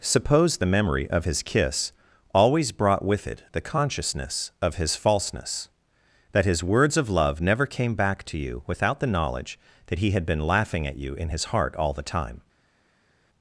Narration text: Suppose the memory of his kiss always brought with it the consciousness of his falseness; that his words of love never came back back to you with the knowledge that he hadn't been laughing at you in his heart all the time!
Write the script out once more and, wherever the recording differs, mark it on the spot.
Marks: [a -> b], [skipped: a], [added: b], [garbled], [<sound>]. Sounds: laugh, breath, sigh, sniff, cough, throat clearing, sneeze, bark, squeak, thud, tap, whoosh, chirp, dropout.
Suppose the memory of his kiss always brought with it the consciousness of his falseness; that his words of love never came back [skipped: back] to you [with -> without] the knowledge that he [hadn't -> had] been laughing at you in his heart all the time!